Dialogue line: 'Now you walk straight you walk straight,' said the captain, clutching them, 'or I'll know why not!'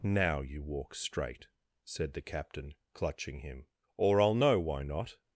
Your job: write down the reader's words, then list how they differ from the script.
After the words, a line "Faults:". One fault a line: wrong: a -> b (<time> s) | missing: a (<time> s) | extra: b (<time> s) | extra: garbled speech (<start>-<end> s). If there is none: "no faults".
'Now you walk straight,' said the captain, clutching him, 'or I'll know why not!'
Faults:
missing: you walk straight (1.5 s)
wrong: them -> him (3.4 s)